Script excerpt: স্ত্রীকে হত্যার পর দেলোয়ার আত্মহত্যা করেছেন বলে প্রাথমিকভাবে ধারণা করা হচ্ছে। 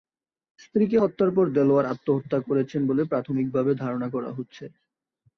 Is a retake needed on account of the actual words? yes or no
no